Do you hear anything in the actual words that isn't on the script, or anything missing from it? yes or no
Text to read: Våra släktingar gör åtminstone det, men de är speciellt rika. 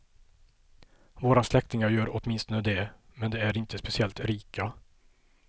yes